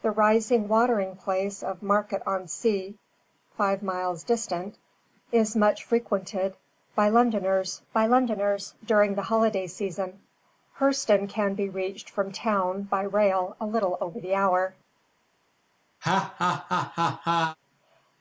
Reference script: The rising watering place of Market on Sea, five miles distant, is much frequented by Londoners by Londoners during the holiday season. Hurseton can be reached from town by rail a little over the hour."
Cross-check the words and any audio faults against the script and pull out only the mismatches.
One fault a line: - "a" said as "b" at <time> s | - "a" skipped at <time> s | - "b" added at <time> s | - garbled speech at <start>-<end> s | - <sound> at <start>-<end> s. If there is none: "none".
- laugh at 16.0-17.6 s